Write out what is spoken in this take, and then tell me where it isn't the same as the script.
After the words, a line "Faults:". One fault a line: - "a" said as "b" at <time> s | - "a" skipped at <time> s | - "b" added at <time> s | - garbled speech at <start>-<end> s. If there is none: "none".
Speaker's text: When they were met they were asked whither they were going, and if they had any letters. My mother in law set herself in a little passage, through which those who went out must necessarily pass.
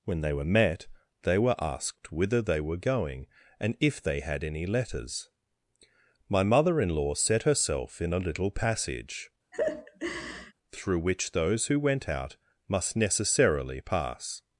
When they were met they were asked whither they were going, and if they had any letters. My mother in law set herself in a little passage, through which those who went out must necessarily pass.
Faults:
none